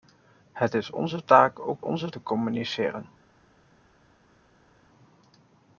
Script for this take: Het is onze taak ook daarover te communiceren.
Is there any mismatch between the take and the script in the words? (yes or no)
yes